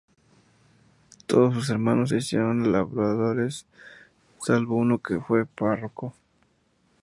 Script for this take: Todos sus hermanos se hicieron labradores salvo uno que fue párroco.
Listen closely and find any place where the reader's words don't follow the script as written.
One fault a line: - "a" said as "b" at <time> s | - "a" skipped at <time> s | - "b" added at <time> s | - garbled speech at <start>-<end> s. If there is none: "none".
none